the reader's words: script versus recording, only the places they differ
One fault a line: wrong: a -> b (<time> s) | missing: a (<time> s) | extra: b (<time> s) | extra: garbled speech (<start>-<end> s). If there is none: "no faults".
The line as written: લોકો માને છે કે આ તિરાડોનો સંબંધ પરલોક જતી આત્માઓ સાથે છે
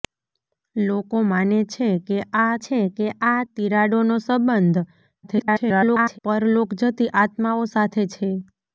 extra: છે કે આ (2.6 s)
extra: garbled speech (5.2-6.2 s)